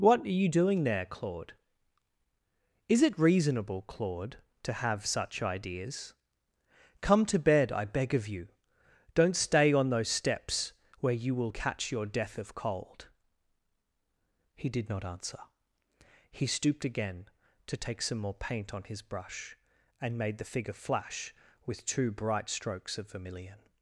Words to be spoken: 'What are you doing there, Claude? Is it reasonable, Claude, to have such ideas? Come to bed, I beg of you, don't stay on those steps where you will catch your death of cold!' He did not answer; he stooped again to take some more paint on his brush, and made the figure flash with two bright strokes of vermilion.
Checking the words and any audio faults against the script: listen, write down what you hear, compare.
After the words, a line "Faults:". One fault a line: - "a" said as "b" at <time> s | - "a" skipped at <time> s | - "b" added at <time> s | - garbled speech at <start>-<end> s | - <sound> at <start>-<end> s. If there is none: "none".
'What are you doing there, Claude? Is it reasonable, Claude, to have such ideas? Come to bed, I beg of you, don't stay on those steps where you will catch your death of cold!' He did not answer; he stooped again to take some more paint on his brush, and made the figure flash with two bright strokes of vermilion.
Faults:
none